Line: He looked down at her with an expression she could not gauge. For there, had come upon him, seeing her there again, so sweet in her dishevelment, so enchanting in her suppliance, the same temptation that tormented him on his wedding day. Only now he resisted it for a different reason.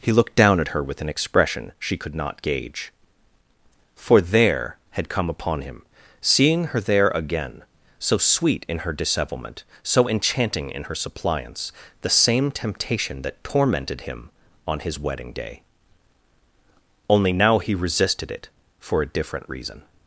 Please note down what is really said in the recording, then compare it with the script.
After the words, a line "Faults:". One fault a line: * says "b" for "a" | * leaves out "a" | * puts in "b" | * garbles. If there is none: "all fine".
He looked down at her with an expression she could not gauge. For there, had come upon him, seeing her there again, so sweet in her dishevelment, so enchanting in her suppliance, the same temptation that tormented him on his wedding day. Only now he resisted it for a different reason.
Faults:
all fine